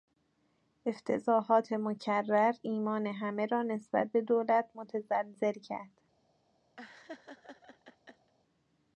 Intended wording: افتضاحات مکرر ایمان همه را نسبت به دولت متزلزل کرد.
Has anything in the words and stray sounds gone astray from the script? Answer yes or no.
yes